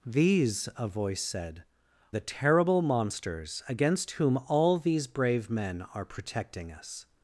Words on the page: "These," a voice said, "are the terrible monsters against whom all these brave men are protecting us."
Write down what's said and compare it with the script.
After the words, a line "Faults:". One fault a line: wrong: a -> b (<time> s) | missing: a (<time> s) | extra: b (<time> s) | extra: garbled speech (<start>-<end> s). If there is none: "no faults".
"These," a voice said, "the terrible monsters against whom all these brave men are protecting us."
Faults:
missing: are (1.6 s)